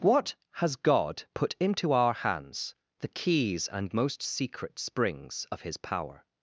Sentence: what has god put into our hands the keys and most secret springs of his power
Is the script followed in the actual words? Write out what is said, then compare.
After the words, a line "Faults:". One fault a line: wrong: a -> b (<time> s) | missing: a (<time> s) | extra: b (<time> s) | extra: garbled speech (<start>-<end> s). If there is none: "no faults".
what has god put into our hands the keys and most secret springs of his power
Faults:
no faults